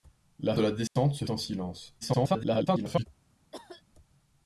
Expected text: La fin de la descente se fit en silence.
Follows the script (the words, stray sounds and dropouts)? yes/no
no